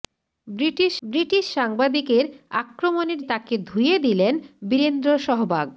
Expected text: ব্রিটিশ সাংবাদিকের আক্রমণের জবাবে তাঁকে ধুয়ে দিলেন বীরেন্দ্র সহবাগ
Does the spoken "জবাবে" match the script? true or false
false